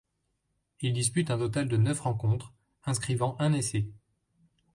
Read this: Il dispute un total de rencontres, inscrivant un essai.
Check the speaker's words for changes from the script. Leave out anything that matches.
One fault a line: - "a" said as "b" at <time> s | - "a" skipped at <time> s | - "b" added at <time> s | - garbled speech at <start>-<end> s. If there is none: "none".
- "neuf" added at 1.8 s